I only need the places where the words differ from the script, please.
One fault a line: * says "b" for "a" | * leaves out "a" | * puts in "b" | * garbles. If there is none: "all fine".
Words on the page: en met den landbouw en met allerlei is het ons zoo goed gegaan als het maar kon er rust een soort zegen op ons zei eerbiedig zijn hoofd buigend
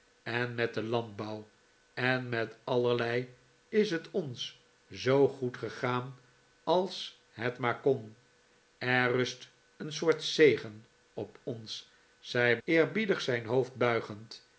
all fine